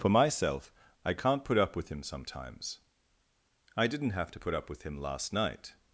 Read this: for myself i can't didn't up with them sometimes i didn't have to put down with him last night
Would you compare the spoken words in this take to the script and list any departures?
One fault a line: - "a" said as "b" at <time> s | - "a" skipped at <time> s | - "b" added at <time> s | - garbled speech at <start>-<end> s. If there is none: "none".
- "didn't" said as "put" at 1.4 s
- "them" said as "him" at 1.9 s
- "down" said as "up" at 4.5 s